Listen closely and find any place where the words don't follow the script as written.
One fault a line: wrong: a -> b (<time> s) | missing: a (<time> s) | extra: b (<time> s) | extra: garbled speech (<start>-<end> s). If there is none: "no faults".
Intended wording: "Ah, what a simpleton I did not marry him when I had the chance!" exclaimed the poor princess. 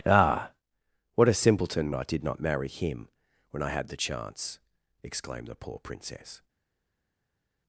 no faults